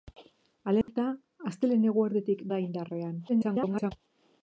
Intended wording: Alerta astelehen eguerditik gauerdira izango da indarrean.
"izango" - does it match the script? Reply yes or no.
no